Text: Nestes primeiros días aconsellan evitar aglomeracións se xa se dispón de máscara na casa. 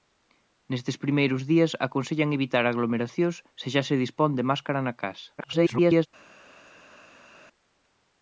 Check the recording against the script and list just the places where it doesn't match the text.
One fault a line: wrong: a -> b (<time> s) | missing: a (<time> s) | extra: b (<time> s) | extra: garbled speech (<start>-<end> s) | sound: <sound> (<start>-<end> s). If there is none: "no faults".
extra: garbled speech (5.4-6.1 s)